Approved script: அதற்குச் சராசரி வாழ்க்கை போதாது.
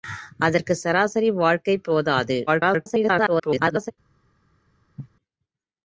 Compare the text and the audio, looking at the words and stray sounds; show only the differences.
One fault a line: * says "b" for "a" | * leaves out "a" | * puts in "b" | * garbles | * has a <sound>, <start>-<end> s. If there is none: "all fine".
* garbles
* has a cough, 5.0-5.1 s